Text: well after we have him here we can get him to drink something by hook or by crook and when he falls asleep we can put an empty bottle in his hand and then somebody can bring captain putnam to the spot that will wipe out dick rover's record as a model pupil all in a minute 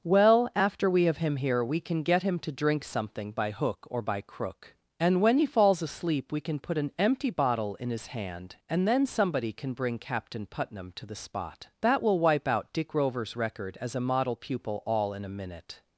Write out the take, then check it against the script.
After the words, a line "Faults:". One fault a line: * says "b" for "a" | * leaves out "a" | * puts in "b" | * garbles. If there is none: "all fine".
well after we have him here we can get him to drink something by hook or by crook and when he falls asleep we can put an empty bottle in his hand and then somebody can bring captain putnam to the spot that will wipe out dick rover's record as a model pupil all in a minute
Faults:
all fine